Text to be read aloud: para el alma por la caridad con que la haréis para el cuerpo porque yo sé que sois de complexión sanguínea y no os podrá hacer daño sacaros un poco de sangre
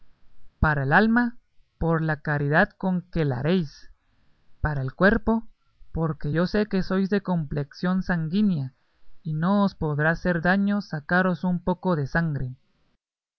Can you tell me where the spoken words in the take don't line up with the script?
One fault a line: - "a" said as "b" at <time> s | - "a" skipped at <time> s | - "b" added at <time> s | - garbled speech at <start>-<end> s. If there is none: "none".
none